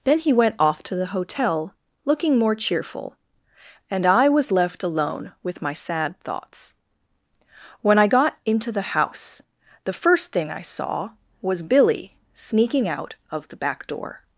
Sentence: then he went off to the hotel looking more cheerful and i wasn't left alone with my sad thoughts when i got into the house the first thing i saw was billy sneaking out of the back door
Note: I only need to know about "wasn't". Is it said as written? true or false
false